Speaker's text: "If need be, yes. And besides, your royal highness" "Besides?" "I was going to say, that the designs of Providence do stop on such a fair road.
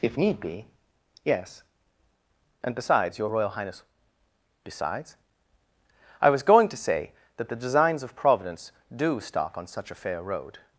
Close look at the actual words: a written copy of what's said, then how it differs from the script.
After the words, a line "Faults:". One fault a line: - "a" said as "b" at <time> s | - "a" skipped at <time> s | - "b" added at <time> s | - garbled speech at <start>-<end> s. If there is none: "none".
"If need be, yes. And besides, your royal highness" "Besides?" "I was going to say, that the designs of Providence do stop on such a fair road.
Faults:
none